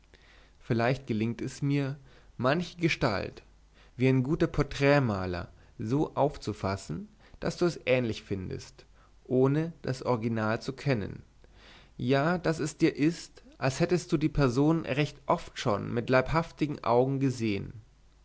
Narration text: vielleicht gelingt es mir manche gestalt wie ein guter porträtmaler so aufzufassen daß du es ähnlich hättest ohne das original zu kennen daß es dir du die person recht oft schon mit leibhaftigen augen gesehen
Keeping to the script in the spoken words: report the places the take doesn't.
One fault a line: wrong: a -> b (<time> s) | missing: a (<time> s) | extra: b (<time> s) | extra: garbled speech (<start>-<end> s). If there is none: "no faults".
wrong: hättest -> findest (8.2 s)
extra: ja (12.0 s)
extra: ist als hättest (12.9 s)